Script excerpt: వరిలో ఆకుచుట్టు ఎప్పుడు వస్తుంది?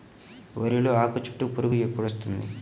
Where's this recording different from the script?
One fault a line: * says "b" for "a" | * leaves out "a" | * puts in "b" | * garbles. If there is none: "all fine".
* puts in "పురుగు"